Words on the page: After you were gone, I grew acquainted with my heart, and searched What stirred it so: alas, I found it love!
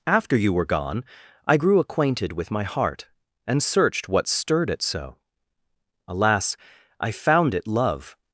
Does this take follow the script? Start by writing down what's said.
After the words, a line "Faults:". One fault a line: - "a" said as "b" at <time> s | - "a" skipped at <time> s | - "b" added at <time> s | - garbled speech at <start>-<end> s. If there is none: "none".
After you were gone, I grew acquainted with my heart, and searched What stirred it so: alas, I found it love!
Faults:
none